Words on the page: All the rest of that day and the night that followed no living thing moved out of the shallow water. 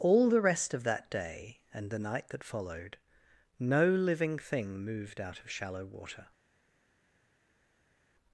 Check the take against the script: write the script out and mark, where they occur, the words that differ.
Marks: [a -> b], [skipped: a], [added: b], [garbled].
All the rest of that day and the night that followed no living thing moved out of [skipped: the] shallow water.